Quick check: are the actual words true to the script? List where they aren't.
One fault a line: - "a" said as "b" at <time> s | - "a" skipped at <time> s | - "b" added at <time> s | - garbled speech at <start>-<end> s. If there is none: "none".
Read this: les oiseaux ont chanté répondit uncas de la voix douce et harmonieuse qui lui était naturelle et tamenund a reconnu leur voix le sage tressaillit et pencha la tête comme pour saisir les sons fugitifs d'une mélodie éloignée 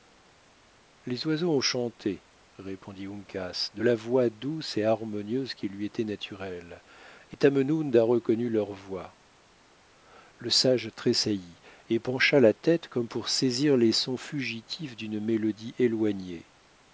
none